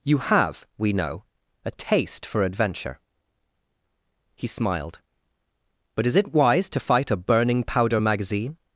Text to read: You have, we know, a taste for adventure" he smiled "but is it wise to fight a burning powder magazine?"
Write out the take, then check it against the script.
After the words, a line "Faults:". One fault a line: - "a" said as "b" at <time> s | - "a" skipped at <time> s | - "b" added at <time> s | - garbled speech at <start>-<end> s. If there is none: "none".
You have, we know, a taste for adventure" he smiled "but is it wise to fight a burning powder magazine?"
Faults:
none